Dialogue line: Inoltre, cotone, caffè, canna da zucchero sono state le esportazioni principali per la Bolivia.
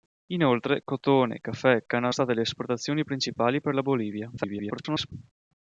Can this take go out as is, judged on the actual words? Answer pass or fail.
fail